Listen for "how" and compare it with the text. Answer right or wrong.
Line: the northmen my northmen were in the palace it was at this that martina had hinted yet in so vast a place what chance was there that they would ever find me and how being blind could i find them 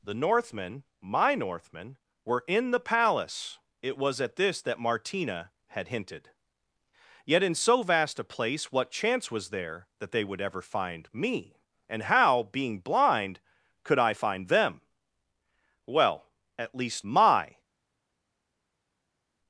right